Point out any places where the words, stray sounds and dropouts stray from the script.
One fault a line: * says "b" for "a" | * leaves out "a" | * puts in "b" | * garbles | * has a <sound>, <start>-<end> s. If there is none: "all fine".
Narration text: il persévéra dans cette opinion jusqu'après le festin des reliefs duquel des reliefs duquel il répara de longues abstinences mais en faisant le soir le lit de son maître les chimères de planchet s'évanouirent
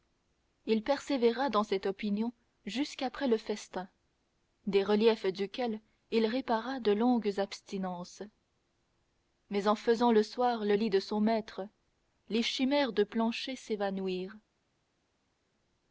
* leaves out "des reliefs duquel"